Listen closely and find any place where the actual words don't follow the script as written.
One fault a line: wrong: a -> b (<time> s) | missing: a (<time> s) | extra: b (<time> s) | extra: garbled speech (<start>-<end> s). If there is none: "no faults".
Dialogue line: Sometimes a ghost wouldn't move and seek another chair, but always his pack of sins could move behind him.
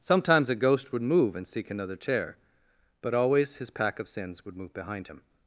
wrong: wouldn't -> would (0.9 s)
wrong: could -> would (4.5 s)